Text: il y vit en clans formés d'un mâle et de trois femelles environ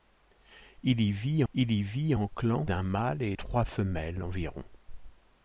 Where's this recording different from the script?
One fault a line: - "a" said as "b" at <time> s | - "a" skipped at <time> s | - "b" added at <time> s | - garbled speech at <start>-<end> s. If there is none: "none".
- "il y vit" added at 1.5 s
- "formés" skipped at 2.7 s
- "de" skipped at 3.4 s